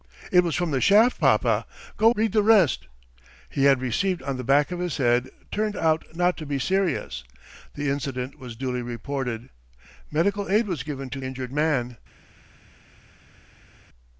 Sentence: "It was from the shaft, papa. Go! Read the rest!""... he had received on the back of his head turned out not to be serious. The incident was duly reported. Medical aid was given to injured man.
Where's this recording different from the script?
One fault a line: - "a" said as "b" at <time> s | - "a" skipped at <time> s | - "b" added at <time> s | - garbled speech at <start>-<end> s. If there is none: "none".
none